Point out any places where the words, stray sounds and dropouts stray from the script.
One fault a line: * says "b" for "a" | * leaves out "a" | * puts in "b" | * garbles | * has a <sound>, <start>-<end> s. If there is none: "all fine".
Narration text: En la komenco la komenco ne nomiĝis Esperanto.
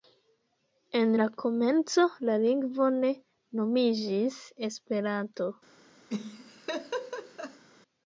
* says "lingvo" for "komenco"
* has a laugh, 6.1-7.6 s